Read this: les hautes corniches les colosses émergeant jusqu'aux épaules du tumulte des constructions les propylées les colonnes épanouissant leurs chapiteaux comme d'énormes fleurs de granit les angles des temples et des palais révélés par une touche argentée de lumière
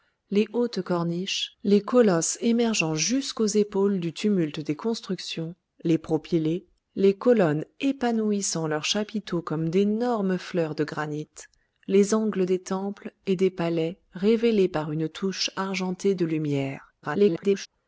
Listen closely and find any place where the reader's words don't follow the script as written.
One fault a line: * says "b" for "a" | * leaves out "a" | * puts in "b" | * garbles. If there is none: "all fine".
* garbles